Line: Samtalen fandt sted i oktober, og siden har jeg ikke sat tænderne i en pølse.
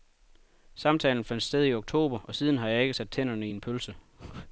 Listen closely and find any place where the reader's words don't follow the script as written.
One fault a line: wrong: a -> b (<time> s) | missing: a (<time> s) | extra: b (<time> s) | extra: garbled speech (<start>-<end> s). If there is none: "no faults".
no faults